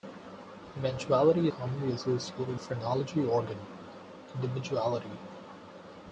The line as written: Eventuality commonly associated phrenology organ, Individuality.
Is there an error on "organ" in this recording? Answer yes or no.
no